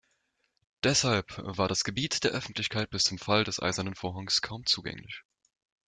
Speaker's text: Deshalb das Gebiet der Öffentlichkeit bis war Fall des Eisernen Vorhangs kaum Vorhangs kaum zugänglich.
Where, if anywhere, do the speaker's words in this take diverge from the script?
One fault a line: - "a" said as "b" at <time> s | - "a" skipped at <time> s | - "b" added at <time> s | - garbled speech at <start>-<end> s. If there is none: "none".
- "war" added at 1.4 s
- "war" said as "zum" at 3.0 s
- "Vorhangs kaum" skipped at 4.6 s